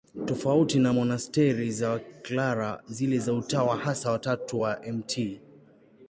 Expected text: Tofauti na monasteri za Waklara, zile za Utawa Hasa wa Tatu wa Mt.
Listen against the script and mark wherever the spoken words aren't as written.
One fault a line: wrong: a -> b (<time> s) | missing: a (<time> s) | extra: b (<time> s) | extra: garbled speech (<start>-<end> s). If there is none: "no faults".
no faults